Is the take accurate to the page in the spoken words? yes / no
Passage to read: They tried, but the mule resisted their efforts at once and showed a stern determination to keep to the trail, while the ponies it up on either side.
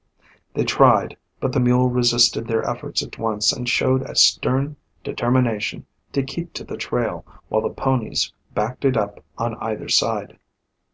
no